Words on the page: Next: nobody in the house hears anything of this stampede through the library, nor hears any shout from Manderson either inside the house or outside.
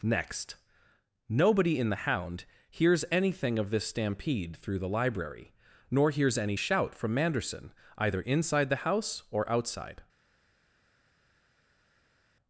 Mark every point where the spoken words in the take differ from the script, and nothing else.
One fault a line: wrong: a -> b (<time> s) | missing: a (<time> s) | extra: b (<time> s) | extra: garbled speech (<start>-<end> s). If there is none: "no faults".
wrong: house -> hound (2.1 s)